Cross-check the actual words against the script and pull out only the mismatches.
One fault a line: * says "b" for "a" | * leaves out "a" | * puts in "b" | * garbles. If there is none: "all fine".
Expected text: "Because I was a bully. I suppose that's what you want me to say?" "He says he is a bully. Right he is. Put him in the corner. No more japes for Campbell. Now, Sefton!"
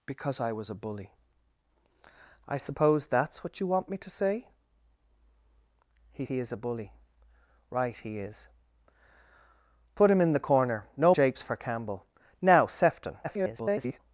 * leaves out "says"
* leaves out "more"
* garbles